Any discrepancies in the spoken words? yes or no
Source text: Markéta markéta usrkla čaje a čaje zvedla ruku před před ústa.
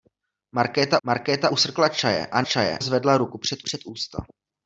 no